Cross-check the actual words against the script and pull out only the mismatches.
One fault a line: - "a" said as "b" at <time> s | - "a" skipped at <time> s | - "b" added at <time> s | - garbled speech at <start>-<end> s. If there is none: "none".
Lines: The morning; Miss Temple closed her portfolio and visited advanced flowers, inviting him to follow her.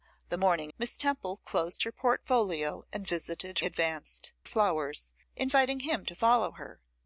none